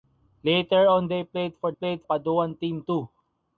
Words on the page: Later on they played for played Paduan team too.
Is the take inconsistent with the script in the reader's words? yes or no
no